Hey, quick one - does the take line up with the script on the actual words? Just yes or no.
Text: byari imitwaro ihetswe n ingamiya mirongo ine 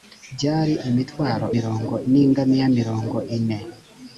no